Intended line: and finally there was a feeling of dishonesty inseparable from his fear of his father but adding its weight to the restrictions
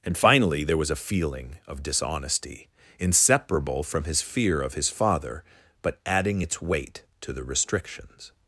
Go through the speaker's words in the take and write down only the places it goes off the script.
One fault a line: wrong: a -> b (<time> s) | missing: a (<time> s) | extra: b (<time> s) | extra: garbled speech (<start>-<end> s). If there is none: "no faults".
no faults